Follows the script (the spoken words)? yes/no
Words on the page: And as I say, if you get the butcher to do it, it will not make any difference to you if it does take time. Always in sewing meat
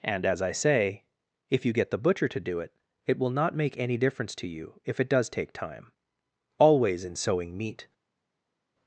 yes